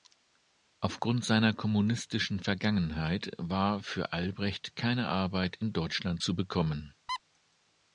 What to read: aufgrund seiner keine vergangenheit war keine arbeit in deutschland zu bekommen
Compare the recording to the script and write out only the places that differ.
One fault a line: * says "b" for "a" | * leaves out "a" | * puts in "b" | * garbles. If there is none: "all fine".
* says "kommunistischen" for "keine"
* puts in "für albrecht"